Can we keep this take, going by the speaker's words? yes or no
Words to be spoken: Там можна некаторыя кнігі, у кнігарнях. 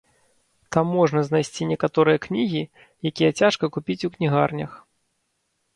no